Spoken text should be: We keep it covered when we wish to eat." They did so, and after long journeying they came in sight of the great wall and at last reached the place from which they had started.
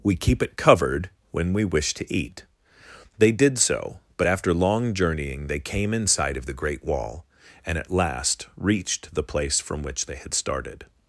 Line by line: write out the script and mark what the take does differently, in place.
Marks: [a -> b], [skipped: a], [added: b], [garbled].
We keep it covered when we wish to eat." They did so, [and -> but] after long journeying they came in sight of the great wall and at last reached the place from which they had started.